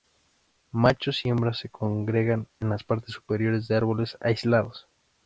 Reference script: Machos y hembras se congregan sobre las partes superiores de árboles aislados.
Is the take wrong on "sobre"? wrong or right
wrong